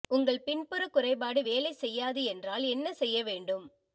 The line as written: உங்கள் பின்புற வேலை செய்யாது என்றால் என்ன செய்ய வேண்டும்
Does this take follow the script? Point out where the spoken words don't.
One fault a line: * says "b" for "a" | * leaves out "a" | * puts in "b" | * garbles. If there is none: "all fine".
* puts in "குறைபாடு"